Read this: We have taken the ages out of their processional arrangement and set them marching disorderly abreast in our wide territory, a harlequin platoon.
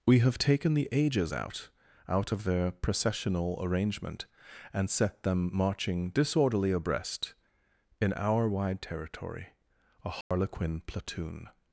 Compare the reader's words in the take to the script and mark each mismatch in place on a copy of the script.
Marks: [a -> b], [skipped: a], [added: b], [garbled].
We have taken the ages out [added: out] of their processional arrangement and set them marching disorderly abreast in our wide territory, a harlequin platoon.